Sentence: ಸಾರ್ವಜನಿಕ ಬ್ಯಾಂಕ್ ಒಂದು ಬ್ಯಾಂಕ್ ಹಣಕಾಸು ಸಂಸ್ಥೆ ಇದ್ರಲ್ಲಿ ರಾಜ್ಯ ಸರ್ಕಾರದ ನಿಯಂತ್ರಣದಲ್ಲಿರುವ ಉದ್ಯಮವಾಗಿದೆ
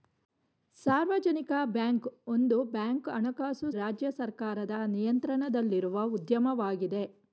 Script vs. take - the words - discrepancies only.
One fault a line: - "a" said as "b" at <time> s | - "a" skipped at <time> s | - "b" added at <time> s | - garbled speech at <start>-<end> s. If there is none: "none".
- "ಸಂಸ್ಥೆ ಇದ್ರಲ್ಲಿ" skipped at 3.7 s